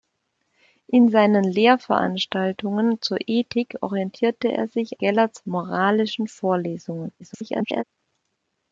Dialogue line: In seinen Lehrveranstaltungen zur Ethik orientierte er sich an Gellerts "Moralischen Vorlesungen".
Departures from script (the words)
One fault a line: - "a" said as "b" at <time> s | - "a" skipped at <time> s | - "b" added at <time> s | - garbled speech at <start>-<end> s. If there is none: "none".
- "an" skipped at 5.0 s
- garbled speech at 7.2-7.8 s